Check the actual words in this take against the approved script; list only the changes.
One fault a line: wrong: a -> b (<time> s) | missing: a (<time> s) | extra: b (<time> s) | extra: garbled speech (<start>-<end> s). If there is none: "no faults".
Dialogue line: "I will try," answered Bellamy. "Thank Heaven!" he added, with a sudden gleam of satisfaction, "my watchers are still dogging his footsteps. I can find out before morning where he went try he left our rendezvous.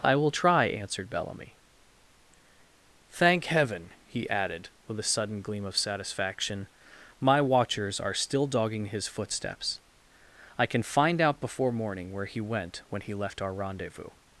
wrong: try -> when (12.9 s)